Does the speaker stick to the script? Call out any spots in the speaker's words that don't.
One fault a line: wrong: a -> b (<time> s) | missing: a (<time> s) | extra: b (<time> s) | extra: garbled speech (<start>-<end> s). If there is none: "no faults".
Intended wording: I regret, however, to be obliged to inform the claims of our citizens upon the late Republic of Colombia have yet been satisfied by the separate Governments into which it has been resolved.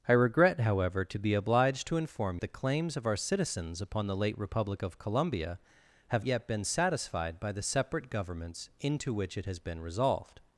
no faults